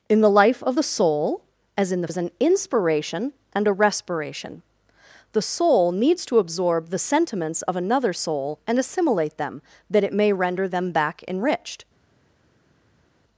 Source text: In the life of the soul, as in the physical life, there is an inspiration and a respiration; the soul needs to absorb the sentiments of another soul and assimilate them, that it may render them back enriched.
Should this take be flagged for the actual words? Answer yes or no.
yes